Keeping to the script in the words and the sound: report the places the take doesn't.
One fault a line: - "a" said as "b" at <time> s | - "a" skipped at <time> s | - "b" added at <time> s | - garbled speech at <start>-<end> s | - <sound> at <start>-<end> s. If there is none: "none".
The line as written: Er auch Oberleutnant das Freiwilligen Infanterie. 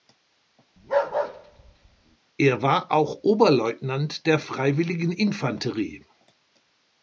- bark at 0.8-2.2 s
- "war" added at 2.6 s
- "das" said as "der" at 4.3 s